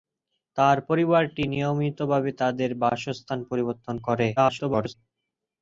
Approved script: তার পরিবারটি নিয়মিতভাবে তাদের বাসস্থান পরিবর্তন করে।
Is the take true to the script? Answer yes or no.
no